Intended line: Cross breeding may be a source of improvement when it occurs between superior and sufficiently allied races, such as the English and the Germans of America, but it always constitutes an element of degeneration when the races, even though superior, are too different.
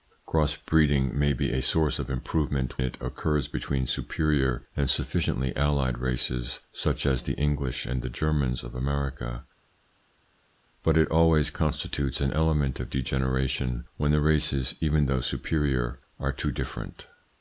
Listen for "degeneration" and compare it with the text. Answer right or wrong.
right